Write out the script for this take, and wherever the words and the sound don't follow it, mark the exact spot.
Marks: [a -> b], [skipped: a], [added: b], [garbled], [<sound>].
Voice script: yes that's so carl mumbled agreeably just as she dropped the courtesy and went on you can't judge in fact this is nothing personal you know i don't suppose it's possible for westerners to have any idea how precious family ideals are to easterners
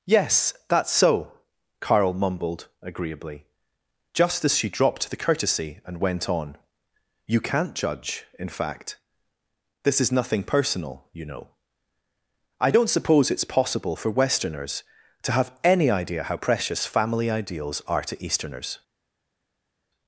yes that's so carl mumbled agreeably just as she dropped the courtesy and went on you can't judge in fact this is nothing personal you know i don't suppose it's possible for westerners to have any idea how precious family ideals are to easterners